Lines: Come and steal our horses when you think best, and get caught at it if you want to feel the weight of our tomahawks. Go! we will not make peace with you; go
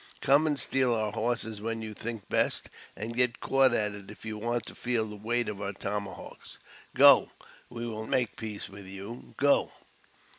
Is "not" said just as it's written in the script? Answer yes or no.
no